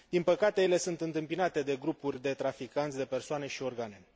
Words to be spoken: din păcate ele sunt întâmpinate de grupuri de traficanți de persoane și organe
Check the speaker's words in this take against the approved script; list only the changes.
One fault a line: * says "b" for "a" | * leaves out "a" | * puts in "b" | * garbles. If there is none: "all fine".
all fine